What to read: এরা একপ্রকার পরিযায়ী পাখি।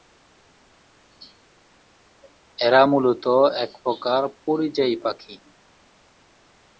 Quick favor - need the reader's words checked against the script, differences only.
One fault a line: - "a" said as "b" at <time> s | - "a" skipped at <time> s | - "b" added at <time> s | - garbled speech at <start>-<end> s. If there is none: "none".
- "মূলত" added at 2.8 s